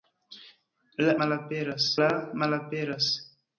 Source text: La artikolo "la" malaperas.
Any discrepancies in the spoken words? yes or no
yes